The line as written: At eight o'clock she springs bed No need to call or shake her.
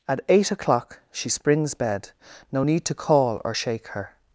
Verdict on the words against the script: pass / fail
pass